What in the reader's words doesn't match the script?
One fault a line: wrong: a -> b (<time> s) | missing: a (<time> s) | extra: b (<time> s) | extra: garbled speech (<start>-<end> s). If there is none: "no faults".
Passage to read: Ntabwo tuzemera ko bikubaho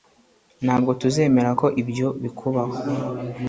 extra: ibyo (1.8 s)